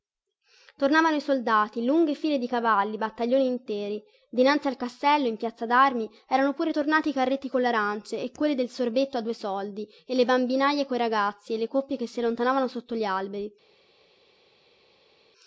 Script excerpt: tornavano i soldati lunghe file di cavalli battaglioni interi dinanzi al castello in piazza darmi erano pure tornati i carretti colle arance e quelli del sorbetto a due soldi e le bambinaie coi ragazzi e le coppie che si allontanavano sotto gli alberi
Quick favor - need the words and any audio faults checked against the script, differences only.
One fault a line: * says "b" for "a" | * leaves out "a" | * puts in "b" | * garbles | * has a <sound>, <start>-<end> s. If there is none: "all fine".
all fine